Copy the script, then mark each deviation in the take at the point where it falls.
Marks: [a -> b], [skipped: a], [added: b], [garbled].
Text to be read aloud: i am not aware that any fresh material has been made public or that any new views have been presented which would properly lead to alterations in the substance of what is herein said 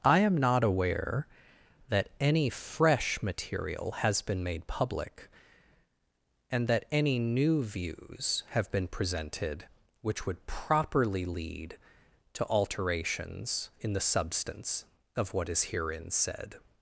i am not aware that any fresh material has been made public [or -> and] that any new views have been presented which would properly lead to alterations in the substance of what is herein said